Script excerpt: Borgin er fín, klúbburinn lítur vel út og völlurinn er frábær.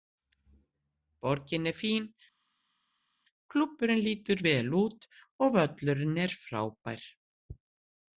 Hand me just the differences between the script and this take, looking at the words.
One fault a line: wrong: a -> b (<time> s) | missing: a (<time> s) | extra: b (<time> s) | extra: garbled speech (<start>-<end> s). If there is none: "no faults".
no faults